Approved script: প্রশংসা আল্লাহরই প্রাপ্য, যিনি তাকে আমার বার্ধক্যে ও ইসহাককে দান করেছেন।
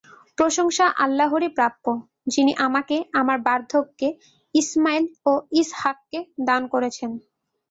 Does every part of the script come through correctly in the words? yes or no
no